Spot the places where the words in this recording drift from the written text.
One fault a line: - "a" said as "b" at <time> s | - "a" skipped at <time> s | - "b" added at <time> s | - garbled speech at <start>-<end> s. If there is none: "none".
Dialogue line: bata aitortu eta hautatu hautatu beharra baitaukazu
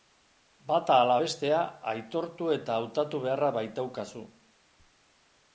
- "ala bestea" added at 1.0 s
- "hautatu" skipped at 3.2 s